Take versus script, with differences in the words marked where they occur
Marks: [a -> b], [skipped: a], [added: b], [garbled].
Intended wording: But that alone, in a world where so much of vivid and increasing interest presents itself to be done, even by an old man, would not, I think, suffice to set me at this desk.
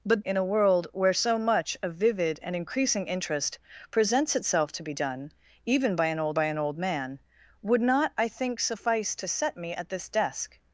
But [skipped: that alone,] in a world where so much of vivid and increasing interest presents itself to be done, even by an old [added: by an old] man, would not, I think, suffice to set me at this desk.